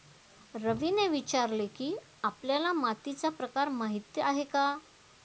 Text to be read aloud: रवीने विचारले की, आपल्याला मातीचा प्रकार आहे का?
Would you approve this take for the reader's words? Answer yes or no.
no